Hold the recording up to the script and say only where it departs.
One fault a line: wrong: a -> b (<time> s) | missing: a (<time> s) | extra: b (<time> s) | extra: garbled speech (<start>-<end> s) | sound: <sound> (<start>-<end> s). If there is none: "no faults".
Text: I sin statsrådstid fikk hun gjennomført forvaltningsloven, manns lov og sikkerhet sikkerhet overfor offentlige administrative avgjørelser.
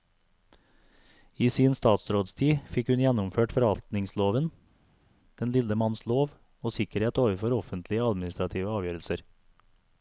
extra: den lille (5.4 s)
missing: sikkerhet (7.2 s)